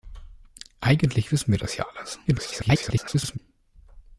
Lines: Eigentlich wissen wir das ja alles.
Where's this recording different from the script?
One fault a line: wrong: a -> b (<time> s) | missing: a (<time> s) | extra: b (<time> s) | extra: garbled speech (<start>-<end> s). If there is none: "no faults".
extra: garbled speech (2.3-3.4 s)